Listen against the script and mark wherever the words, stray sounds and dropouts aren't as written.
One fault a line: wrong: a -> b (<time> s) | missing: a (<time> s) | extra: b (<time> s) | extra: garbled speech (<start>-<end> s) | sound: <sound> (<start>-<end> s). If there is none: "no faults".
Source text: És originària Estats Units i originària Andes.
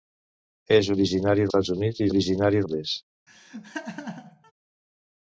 sound: laugh (3.3-4.5 s)